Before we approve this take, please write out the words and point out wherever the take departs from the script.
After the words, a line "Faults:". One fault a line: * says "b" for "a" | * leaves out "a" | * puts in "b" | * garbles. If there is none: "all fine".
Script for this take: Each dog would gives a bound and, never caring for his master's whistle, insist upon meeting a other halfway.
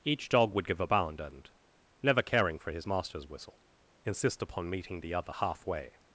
Each dog would give a bound and, never caring for his master's whistle, insist upon meeting the other halfway.
Faults:
* says "give" for "gives"
* says "the" for "a"